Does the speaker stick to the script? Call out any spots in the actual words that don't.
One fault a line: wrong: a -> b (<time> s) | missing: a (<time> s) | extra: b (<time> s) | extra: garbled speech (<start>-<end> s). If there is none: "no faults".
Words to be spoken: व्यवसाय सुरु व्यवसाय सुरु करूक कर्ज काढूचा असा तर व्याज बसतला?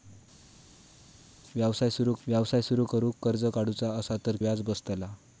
no faults